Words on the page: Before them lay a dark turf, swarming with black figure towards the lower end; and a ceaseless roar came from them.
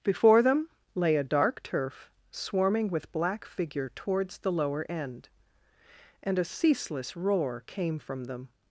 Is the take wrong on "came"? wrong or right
right